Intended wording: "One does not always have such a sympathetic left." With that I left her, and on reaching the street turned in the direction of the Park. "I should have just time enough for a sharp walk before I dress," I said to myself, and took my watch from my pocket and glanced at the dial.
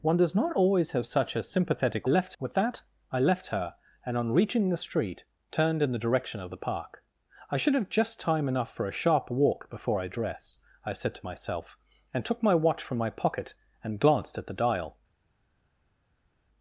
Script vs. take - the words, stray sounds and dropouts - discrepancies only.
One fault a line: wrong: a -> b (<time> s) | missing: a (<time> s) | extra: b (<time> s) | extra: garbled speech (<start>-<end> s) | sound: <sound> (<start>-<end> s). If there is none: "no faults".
no faults